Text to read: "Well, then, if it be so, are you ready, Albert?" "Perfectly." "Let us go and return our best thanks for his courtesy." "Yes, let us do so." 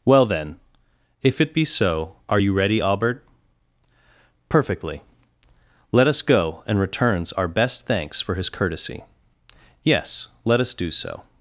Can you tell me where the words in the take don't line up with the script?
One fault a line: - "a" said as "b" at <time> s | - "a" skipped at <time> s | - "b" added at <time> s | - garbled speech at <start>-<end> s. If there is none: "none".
- "return" said as "returns" at 6.8 s